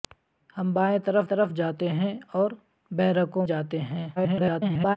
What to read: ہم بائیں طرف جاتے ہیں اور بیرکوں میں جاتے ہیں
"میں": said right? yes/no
no